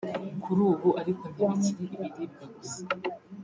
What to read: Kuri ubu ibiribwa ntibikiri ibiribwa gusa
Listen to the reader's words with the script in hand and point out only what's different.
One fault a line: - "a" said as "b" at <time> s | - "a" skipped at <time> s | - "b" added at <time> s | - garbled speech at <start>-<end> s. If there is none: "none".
- "ibiribwa" said as "ariko" at 1.0 s